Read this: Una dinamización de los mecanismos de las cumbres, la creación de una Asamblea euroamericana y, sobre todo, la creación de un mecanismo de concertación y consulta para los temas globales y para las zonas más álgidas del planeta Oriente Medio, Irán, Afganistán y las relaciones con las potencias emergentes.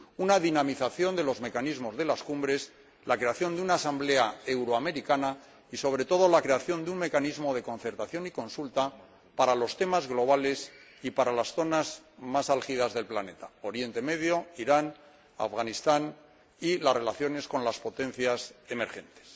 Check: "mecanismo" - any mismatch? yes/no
no